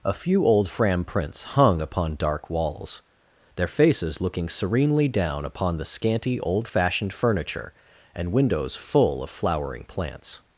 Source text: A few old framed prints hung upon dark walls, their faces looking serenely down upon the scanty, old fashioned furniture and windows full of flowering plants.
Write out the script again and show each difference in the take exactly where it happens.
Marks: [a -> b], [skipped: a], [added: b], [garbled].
A few old [framed -> fram] prints hung upon dark walls, their faces looking serenely down upon the scanty, old fashioned furniture and windows full of flowering plants.